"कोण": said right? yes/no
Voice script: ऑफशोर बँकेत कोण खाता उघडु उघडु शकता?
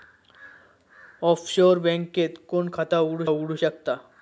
yes